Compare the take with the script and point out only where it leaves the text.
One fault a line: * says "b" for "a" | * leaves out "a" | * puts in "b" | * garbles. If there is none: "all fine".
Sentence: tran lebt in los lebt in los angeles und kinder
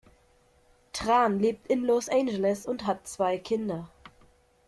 * says "angeles und hat zwei" for "lebt in los angeles und"